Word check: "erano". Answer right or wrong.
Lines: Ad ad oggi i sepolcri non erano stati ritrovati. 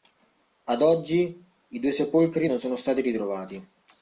wrong